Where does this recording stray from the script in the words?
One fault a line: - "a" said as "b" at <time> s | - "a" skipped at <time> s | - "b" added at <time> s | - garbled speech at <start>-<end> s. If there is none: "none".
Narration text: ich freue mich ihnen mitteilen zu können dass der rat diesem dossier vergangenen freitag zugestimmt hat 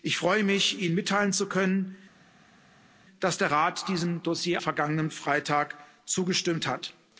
none